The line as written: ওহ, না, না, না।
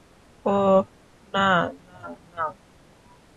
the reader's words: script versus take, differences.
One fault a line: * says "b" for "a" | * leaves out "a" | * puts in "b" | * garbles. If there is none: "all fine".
all fine